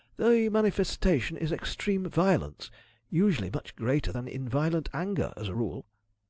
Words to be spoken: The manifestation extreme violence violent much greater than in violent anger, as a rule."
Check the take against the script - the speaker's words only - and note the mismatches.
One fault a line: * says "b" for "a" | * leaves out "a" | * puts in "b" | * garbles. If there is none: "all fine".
* puts in "is"
* says "usually" for "violent"